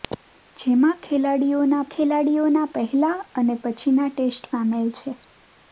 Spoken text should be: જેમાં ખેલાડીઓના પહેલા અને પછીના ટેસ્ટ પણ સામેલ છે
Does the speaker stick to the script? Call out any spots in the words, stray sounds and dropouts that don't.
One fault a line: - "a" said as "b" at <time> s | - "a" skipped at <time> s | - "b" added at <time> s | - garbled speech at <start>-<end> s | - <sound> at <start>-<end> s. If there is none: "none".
- "ખેલાડીઓના" added at 1.9 s
- "પણ" skipped at 4.5 s